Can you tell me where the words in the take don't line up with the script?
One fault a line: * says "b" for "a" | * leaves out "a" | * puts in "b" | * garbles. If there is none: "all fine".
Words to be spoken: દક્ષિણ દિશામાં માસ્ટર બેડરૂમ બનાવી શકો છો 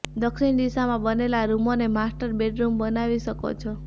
* puts in "બનેલા રૂમોને"